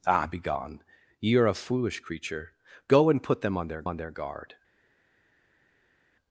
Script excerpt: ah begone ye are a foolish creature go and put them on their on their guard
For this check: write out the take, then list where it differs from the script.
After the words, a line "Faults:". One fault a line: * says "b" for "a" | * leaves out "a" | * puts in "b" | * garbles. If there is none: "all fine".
ah begone ye are a foolish creature go and put them on their on their guard
Faults:
all fine